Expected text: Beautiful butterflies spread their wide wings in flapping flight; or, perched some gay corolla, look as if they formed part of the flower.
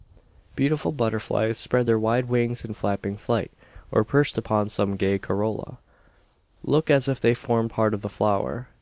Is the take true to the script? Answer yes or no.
no